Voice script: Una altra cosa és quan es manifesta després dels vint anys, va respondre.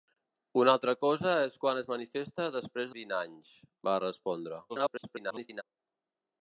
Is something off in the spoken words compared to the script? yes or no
yes